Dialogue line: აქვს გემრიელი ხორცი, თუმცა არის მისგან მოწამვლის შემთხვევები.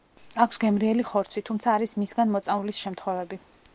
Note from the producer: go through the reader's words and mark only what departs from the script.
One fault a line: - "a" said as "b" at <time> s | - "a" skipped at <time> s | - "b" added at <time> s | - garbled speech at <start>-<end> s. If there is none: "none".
none